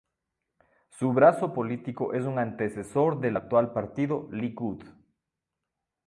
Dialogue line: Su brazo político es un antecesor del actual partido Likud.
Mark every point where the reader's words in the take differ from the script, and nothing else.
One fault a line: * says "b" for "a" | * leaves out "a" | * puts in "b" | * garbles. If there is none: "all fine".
all fine